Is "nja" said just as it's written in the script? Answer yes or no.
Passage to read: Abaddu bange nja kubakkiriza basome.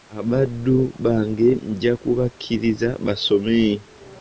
yes